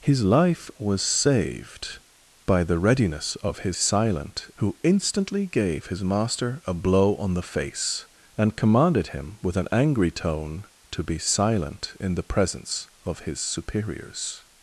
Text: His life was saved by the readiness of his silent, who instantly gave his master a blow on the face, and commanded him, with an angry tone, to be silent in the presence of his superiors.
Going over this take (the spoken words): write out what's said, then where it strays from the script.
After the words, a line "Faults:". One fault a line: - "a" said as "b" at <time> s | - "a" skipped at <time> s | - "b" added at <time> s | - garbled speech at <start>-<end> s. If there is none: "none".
His life was saved by the readiness of his silent, who instantly gave his master a blow on the face, and commanded him, with an angry tone, to be silent in the presence of his superiors.
Faults:
none